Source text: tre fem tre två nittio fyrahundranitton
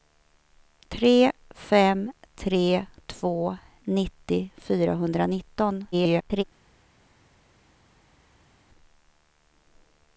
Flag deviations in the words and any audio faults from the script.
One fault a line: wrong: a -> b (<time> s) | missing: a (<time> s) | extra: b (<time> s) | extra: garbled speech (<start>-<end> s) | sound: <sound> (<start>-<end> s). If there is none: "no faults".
extra: garbled speech (5.9-6.4 s)